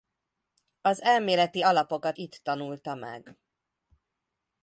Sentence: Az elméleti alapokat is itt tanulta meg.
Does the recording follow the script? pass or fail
fail